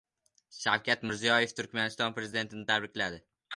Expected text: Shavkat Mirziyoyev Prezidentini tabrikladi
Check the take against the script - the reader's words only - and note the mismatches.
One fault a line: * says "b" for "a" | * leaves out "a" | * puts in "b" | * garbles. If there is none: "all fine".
* puts in "Turkmaniston"